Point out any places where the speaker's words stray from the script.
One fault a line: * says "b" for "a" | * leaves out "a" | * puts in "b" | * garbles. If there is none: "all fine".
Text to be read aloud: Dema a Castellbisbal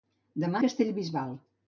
all fine